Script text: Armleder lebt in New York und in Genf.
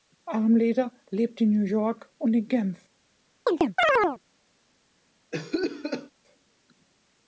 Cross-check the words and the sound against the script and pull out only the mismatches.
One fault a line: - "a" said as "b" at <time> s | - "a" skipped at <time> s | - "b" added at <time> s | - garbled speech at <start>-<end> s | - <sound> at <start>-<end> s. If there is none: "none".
- chirp at 3.5-4.2 s
- cough at 5.3-6.1 s